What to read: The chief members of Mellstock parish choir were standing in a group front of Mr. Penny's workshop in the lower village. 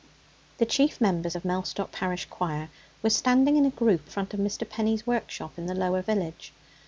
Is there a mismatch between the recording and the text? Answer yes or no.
no